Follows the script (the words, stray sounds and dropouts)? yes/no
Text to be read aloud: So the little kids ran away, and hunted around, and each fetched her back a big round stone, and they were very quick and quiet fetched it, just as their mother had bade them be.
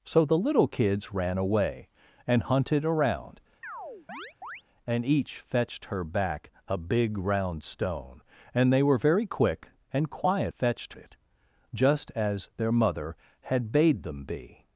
no